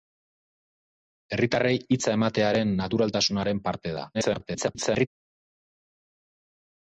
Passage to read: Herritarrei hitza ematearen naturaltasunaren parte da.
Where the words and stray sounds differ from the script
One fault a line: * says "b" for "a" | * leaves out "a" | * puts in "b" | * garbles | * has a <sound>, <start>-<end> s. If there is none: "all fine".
* garbles